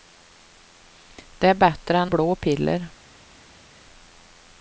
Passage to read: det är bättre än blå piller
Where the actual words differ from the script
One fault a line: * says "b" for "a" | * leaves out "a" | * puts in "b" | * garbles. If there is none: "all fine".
all fine